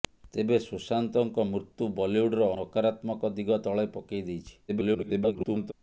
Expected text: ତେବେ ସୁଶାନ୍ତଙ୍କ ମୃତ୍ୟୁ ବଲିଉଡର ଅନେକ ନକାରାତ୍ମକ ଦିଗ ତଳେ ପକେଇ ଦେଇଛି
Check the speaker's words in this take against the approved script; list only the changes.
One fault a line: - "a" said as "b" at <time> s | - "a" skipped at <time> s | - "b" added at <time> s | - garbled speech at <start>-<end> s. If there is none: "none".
- "ଅନେକ" skipped at 2.5 s
- garbled speech at 4.7-5.7 s